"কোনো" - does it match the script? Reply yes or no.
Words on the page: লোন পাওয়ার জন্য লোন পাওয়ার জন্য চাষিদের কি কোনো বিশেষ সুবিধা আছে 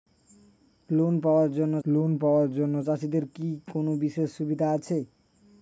yes